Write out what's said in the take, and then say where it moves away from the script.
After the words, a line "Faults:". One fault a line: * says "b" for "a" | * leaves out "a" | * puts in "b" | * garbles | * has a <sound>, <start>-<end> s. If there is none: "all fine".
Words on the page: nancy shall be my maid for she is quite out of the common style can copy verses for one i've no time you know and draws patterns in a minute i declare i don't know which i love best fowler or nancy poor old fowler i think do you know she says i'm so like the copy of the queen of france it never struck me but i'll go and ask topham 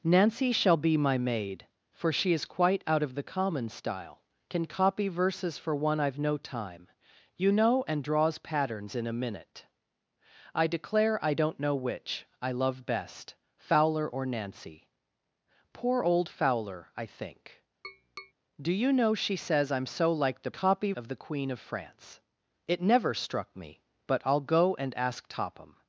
nancy shall be my maid for she is quite out of the common style can copy verses for one i've no time you know and draws patterns in a minute i declare i don't know which i love best fowler or nancy poor old fowler i think do you know she says i'm so like the copy of the queen of france it never struck me but i'll go and ask topham
Faults:
* has a tap, 17.8-18.3 s